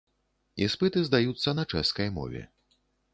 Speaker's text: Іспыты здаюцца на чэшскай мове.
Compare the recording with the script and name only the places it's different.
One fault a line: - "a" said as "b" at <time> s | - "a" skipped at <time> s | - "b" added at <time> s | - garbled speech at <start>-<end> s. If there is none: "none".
none